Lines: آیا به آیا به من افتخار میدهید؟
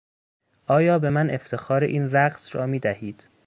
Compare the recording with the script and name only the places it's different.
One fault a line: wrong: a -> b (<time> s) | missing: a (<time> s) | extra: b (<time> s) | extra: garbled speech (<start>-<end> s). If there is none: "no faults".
wrong: آیا به من افتخار -> من افتخار این رقص را (1.1 s)